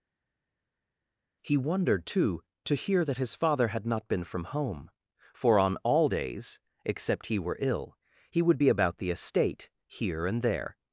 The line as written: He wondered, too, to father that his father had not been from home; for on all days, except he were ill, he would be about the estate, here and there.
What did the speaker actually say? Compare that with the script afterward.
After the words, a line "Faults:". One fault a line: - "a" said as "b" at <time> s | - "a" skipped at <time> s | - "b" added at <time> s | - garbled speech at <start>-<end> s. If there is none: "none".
He wondered, too, to hear that his father had not been from home; for on all days, except he were ill, he would be about the estate, here and there.
Faults:
- "father" said as "hear" at 2.7 s